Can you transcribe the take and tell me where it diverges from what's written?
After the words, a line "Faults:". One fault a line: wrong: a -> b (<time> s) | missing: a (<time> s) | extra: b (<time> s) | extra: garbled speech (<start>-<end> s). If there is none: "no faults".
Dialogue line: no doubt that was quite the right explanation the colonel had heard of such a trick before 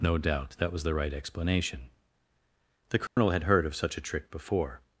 no doubt that was the right explanation the colonel had heard of such a trick before
Faults:
missing: quite (0.8 s)